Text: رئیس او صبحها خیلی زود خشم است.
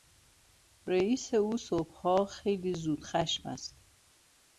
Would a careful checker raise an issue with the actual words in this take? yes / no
no